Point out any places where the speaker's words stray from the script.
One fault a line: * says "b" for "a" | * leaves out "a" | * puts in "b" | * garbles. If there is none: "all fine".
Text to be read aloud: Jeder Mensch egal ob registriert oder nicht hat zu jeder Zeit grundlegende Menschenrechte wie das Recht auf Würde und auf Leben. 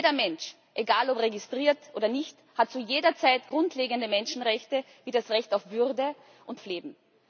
all fine